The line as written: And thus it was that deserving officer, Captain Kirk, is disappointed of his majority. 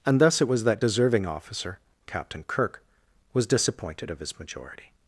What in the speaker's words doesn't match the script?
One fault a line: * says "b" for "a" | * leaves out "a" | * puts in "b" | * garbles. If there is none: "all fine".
* says "was" for "is"